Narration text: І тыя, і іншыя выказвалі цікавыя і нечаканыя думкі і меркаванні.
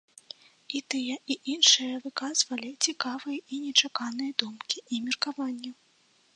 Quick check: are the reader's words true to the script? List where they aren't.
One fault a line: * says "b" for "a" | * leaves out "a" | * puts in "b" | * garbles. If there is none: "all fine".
all fine